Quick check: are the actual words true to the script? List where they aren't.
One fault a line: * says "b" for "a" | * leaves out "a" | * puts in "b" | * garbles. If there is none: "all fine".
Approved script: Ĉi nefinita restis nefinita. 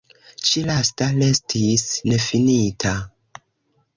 * says "lasta" for "nefinita"